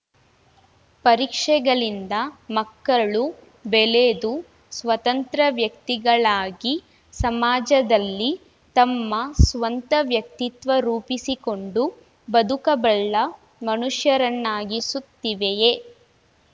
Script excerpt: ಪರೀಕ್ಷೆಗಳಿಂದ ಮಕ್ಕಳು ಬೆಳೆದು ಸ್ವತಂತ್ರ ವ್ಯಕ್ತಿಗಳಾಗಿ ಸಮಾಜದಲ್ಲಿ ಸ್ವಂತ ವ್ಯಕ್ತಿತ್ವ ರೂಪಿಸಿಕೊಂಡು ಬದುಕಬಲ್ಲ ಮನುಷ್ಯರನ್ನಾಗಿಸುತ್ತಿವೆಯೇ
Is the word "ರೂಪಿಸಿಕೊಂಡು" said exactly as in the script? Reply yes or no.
yes